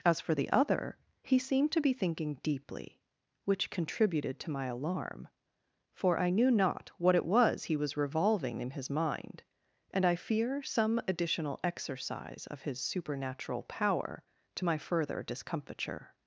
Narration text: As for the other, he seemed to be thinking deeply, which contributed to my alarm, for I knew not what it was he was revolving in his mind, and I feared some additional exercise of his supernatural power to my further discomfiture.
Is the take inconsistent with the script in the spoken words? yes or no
yes